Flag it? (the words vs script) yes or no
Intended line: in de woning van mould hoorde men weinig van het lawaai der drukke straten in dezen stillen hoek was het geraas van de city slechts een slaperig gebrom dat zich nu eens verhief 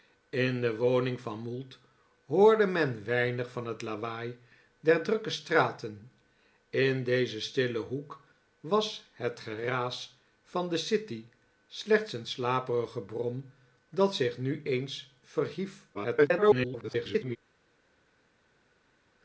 yes